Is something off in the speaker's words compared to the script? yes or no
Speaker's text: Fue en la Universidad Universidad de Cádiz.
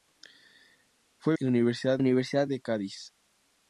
no